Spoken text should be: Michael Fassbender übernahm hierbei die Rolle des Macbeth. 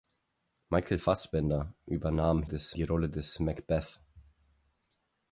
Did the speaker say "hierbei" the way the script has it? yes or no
no